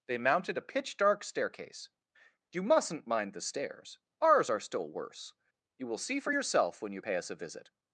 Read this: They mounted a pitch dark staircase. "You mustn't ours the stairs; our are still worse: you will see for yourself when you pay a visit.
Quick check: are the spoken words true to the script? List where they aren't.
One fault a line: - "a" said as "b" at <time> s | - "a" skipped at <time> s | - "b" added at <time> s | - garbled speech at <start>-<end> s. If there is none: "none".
- "ours" said as "mind" at 3.1 s
- "our" said as "ours" at 4.2 s
- "us" added at 7.1 s